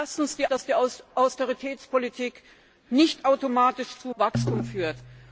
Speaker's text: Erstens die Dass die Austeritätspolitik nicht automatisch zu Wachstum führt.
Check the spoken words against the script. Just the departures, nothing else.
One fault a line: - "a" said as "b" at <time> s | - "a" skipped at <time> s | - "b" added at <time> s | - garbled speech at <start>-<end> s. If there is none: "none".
none